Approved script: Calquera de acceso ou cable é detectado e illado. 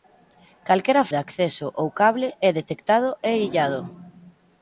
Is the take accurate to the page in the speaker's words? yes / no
yes